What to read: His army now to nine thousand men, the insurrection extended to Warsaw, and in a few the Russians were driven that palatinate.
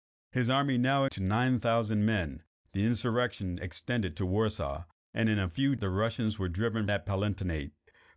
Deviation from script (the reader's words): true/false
false